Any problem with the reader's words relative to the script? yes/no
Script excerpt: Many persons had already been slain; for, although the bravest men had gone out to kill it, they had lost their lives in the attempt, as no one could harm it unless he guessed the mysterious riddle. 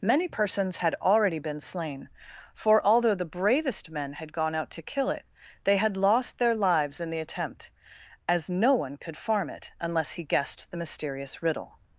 yes